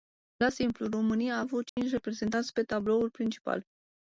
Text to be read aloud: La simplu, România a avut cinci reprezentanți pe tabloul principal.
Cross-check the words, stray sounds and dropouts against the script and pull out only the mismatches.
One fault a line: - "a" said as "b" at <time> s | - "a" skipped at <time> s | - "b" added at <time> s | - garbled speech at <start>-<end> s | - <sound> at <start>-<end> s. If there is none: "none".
- dropout at 1.7-1.8 s